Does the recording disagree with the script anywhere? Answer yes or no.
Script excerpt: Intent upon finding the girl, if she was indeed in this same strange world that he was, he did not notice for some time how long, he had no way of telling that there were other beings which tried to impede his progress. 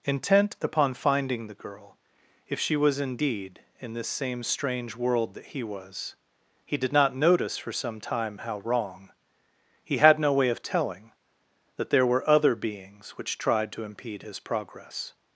yes